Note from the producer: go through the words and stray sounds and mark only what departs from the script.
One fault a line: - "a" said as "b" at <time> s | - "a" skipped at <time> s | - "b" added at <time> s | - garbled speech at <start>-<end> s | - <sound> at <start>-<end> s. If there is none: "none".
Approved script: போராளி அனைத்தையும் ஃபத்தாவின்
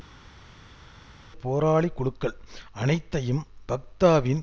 - "குழுக்கள்" added at 1.9 s